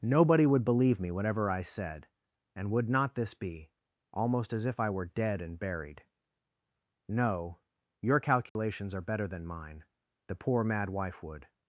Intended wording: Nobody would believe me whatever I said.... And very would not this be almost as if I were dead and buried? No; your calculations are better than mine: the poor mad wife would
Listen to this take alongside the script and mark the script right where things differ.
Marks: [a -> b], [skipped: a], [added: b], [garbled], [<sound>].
Nobody would believe me whatever I said.... And [skipped: very] would not this be almost as if I were dead and buried? No; your calculations [dropout] are better than mine: the poor mad wife would